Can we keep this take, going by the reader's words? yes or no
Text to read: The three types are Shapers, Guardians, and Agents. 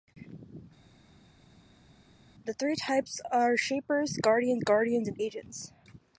no